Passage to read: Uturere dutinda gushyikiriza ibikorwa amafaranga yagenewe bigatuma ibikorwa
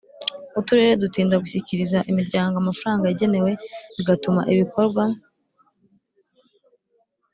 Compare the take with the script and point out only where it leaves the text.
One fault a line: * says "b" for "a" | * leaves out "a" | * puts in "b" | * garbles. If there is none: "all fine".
* says "imiryango" for "ibikorwa"